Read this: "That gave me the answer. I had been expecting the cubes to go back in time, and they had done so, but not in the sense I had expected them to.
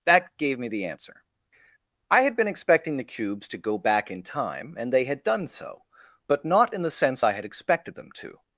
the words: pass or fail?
pass